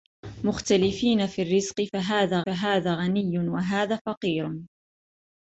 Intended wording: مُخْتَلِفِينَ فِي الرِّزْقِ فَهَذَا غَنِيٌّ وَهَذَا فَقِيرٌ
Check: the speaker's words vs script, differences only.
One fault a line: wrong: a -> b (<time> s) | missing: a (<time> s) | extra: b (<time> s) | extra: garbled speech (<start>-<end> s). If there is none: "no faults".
extra: فَهَذَا (2.5 s)